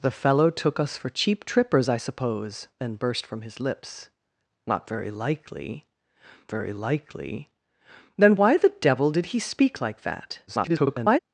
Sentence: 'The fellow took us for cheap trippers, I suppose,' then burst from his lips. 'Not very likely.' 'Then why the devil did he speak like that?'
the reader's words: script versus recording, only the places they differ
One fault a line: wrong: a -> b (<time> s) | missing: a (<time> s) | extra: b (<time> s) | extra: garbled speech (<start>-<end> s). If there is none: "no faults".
extra: very likely (6.5 s)
extra: garbled speech (10.5-11.2 s)